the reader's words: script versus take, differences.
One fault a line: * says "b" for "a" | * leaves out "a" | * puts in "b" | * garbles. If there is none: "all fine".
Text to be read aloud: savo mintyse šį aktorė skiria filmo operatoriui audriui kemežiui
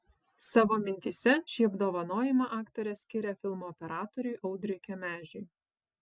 * puts in "apdovanojimą"